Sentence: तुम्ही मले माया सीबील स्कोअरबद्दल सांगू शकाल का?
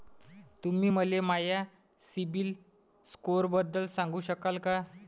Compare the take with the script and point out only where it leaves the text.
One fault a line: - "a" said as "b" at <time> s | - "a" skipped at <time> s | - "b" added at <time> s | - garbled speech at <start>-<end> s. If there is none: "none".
none